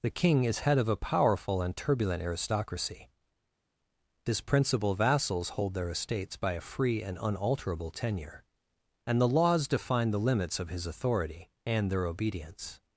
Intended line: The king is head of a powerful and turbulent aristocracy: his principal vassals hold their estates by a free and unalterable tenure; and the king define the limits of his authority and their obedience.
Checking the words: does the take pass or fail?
fail